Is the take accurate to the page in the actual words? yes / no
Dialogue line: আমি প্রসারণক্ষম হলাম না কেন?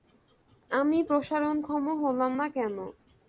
yes